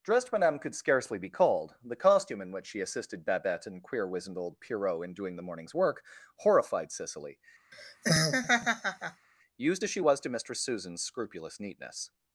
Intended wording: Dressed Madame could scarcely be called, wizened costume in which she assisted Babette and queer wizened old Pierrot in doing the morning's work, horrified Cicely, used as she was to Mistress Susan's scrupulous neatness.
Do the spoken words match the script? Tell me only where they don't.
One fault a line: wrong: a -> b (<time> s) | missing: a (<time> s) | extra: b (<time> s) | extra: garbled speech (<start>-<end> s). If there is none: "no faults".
wrong: wizened -> the (1.8 s)